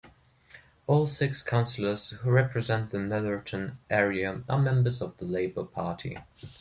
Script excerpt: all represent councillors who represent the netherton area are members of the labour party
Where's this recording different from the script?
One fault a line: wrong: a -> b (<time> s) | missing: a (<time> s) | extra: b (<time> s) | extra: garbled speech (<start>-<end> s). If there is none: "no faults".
wrong: represent -> six (1.1 s)